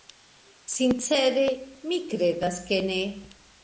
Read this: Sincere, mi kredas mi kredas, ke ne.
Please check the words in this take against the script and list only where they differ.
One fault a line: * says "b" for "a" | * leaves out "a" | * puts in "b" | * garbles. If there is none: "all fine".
* leaves out "mi kredas"